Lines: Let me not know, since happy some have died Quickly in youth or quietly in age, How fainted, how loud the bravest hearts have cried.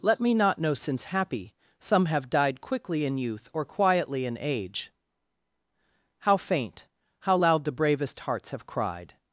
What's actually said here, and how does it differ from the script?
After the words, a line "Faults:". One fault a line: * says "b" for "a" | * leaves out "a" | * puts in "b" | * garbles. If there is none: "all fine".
Let me not know, since happy some have died Quickly in youth or quietly in age, How faint, how loud the bravest hearts have cried.
Faults:
* says "faint" for "fainted"